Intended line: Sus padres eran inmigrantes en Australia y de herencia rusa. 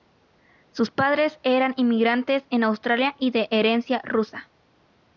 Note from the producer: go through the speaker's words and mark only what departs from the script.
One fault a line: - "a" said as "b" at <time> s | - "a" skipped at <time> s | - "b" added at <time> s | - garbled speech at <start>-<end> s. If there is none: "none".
none